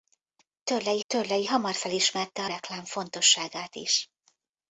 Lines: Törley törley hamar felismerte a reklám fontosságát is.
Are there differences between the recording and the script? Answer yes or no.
no